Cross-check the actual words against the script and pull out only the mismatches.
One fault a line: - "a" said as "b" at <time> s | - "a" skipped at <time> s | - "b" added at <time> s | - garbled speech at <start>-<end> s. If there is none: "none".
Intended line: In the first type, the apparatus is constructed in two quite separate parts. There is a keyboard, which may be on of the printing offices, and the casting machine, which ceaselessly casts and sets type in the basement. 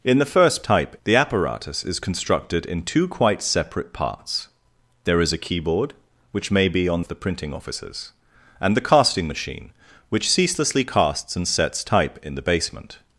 none